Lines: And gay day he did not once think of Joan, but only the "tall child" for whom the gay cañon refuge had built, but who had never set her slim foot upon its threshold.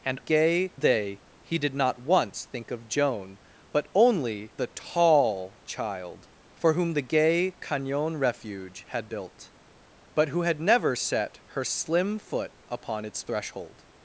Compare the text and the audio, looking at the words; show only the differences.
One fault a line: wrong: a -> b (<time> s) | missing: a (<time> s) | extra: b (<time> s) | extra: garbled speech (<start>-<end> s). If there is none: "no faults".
no faults